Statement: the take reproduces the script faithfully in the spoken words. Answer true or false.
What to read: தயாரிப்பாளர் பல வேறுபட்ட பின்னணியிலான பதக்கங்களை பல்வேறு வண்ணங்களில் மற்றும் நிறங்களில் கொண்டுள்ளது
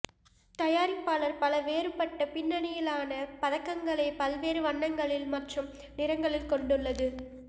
true